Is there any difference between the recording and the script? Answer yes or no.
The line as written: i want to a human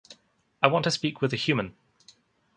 yes